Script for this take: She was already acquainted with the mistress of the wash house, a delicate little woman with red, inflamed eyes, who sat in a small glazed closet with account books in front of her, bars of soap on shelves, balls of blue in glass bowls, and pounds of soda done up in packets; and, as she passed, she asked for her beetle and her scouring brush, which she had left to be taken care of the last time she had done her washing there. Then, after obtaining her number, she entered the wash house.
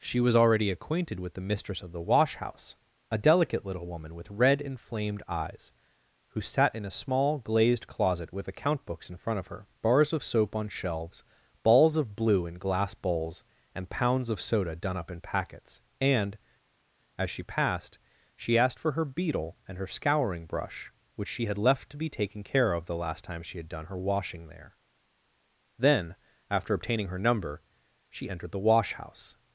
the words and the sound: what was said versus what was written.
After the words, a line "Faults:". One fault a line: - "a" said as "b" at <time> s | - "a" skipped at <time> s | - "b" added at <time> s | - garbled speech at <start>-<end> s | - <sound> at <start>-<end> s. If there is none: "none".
She was already acquainted with the mistress of the wash house, a delicate little woman with red, inflamed eyes, who sat in a small glazed closet with account books in front of her, bars of soap on shelves, balls of blue in glass bowls, and pounds of soda done up in packets; and, as she passed, she asked for her beetle and her scouring brush, which she had left to be taken care of the last time she had done her washing there. Then, after obtaining her number, she entered the wash house.
Faults:
none